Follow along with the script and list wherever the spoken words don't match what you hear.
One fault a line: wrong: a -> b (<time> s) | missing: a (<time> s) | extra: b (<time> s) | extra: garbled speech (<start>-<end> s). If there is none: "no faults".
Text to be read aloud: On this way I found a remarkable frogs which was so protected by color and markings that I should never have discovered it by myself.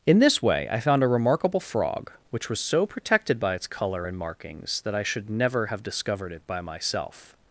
wrong: On -> In (0.1 s)
wrong: frogs -> frog (1.6 s)
extra: its (3.5 s)